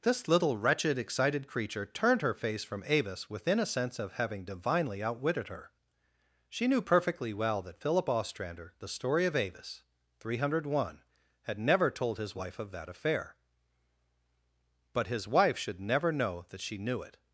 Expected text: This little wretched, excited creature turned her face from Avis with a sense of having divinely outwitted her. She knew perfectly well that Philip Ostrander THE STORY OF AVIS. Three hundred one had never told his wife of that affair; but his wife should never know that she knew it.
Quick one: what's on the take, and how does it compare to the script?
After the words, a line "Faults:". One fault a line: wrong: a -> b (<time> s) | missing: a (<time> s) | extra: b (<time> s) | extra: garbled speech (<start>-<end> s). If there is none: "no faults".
This little wretched, excited creature turned her face from Avis within a sense of having divinely outwitted her. She knew perfectly well that Philip Ostrander THE STORY OF AVIS. Three hundred one had never told his wife of that affair; but his wife should never know that she knew it.
Faults:
wrong: with -> within (3.3 s)